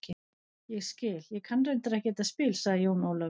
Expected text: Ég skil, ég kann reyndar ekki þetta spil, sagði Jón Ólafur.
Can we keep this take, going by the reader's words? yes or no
yes